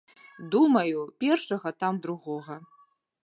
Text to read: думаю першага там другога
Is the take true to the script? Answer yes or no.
yes